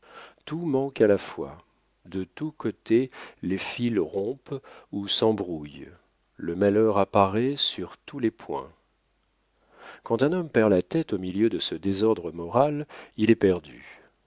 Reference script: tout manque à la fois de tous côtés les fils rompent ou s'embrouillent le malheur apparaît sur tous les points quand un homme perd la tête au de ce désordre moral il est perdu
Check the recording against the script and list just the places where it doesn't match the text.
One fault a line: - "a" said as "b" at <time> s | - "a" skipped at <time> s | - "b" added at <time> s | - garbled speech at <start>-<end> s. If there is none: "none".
- "milieu" added at 11.2 s